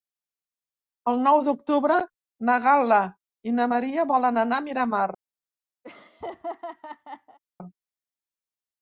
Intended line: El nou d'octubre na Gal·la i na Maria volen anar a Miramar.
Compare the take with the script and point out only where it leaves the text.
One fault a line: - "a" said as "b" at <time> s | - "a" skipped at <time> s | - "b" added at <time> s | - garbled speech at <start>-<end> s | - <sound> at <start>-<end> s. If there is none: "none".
- laugh at 5.8-7.4 s